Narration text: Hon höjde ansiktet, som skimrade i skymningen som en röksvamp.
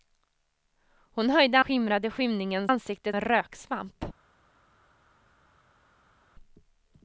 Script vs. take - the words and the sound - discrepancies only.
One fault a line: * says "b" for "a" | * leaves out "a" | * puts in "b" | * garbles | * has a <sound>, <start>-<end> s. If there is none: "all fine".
* leaves out "ansiktet som"
* says "ansiktet" for "som"